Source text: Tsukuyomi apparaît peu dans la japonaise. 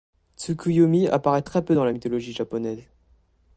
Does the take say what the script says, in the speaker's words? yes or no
no